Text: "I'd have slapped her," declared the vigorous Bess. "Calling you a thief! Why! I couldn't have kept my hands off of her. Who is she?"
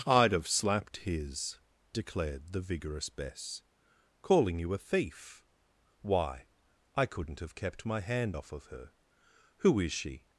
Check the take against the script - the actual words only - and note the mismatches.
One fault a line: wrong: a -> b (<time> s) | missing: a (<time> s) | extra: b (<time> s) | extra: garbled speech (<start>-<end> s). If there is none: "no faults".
wrong: her -> his (1.0 s)
wrong: hands -> hand (8.0 s)